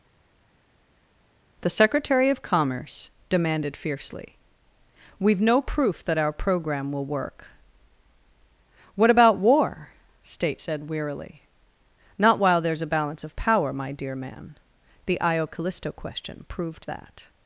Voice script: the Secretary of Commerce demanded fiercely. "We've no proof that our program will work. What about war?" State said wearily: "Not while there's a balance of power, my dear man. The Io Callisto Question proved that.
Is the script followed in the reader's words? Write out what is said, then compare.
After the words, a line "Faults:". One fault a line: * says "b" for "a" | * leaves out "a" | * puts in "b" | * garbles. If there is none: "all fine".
the Secretary of Commerce demanded fiercely. "We've no proof that our program will work. What about war?" State said wearily: "Not while there's a balance of power, my dear man. The Io Callisto Question proved that.
Faults:
all fine